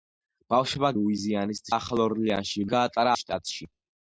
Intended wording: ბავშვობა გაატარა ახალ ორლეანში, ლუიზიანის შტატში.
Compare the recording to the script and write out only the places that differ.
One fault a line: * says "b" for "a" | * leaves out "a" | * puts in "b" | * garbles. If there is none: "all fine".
* says "ლუიზიანის" for "გაატარა"
* says "გაატარა" for "ლუიზიანის"